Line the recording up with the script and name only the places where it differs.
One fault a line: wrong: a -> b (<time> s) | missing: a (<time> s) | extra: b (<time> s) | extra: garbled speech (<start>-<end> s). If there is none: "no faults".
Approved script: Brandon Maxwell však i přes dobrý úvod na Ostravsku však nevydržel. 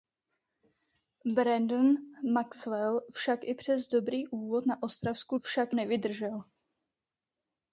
no faults